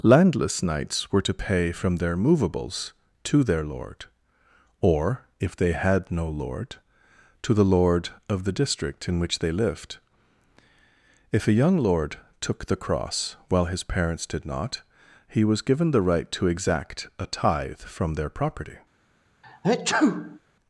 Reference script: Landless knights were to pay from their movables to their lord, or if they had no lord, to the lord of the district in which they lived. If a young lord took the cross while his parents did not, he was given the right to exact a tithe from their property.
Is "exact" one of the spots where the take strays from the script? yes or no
no